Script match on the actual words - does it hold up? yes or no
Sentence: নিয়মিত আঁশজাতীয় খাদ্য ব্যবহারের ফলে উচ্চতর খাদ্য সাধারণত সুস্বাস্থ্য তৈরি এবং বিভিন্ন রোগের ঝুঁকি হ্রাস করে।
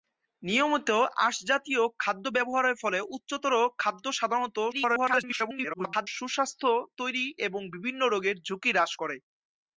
no